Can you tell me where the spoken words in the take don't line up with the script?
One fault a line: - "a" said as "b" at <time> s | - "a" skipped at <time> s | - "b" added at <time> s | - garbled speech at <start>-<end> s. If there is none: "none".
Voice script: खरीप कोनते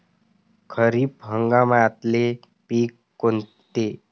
- "हंगामातले पिकं" added at 1.2 s